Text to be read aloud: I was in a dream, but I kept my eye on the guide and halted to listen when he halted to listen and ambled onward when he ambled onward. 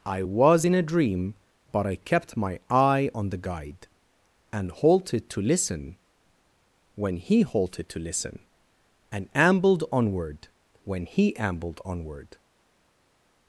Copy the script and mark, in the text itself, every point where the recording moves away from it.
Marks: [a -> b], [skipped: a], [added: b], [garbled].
I was in a dream, but I kept my eye on the guide and halted to listen when he halted to listen and ambled onward when he ambled onward.